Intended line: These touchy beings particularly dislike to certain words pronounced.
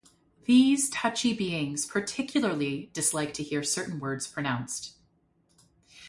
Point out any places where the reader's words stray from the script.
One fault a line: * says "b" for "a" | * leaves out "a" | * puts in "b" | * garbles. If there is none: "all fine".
* puts in "hear"